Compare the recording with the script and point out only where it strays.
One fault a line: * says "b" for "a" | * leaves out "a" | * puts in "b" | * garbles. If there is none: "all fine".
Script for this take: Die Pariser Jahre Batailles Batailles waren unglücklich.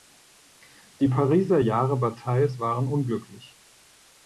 * leaves out "Batailles"